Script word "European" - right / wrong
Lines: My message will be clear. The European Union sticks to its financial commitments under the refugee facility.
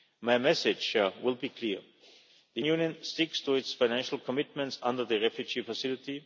wrong